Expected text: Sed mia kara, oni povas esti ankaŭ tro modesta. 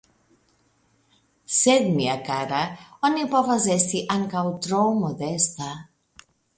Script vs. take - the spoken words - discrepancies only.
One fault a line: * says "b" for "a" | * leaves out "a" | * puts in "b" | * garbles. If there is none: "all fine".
all fine